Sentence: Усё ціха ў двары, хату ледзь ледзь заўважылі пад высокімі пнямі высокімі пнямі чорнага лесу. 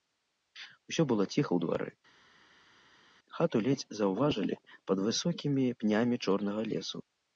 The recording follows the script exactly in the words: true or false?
false